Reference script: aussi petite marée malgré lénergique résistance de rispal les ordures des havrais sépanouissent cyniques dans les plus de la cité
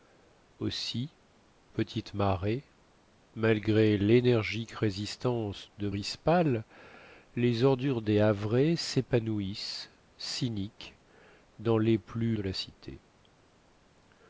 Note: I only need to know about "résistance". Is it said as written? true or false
true